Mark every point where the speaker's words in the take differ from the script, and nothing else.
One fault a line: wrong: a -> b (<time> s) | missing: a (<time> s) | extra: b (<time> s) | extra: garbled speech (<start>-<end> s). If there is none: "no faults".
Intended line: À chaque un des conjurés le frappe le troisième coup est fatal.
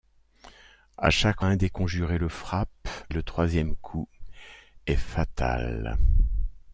no faults